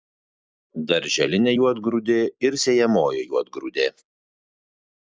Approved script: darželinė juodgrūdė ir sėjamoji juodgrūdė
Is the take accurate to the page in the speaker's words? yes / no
yes